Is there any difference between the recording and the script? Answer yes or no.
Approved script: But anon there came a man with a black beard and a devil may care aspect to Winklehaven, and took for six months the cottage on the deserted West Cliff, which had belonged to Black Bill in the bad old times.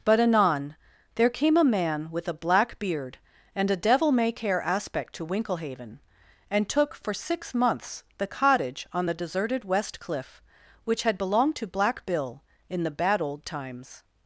no